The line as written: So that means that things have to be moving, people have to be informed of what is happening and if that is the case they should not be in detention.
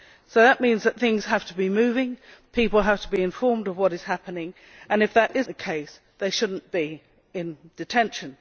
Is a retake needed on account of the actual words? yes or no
no